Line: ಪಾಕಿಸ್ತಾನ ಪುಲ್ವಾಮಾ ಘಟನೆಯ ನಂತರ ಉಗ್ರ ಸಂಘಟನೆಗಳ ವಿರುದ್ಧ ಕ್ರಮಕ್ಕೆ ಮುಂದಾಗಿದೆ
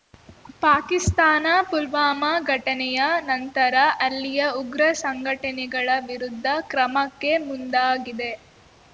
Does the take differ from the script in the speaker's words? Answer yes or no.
yes